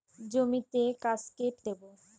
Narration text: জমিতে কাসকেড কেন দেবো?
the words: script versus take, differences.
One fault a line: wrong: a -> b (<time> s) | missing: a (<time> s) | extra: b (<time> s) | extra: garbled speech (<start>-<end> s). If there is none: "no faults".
missing: কেন (1.6 s)